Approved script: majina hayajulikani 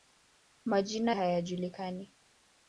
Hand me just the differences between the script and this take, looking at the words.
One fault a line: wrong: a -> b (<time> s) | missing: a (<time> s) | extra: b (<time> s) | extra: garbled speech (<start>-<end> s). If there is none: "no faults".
no faults